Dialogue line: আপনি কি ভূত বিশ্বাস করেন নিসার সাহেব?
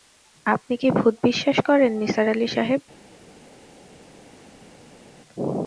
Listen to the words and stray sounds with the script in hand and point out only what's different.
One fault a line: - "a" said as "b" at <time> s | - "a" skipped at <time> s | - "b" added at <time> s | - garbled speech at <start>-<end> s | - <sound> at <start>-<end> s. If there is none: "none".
- "আলি" added at 2.3 s